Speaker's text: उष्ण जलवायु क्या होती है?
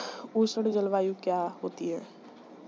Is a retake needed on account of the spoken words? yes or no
no